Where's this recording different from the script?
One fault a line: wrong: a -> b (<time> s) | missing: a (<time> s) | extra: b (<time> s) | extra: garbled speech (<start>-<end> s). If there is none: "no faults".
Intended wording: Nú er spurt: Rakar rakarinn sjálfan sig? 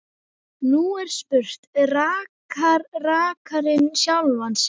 no faults